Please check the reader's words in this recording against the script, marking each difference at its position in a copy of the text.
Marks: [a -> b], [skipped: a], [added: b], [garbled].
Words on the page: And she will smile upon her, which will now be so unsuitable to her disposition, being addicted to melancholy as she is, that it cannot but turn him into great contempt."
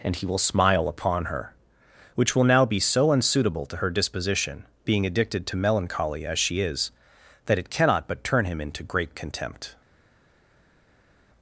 And [she -> he] will smile upon her, which will now be so unsuitable to her disposition, being addicted to melancholy as she is, that it cannot but turn him into great contempt."